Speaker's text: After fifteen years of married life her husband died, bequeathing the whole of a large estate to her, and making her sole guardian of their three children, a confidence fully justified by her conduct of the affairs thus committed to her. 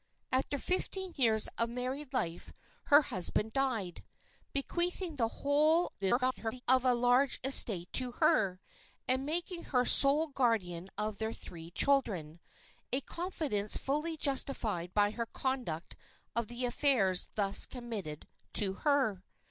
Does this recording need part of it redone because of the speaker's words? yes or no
yes